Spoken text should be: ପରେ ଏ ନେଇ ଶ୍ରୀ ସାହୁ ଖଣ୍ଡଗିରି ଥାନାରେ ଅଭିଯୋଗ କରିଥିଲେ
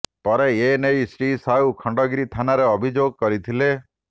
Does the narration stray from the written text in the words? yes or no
no